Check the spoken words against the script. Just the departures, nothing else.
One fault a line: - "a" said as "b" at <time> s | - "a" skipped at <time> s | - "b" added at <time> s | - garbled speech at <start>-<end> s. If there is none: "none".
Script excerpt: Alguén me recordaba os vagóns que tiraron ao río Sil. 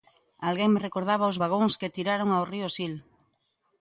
none